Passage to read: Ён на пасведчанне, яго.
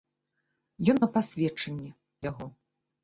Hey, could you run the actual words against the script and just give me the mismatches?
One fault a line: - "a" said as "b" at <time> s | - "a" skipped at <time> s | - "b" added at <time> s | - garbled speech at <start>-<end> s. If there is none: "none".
none